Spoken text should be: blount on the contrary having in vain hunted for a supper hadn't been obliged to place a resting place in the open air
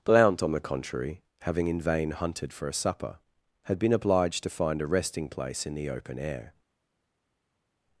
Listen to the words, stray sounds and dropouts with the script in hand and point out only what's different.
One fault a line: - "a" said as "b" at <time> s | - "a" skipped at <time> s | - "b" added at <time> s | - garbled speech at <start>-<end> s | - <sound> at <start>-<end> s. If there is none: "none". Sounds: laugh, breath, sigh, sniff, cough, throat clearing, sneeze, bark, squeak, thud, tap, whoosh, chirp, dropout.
- "hadn't" said as "had" at 3.6 s
- "place" said as "find" at 4.5 s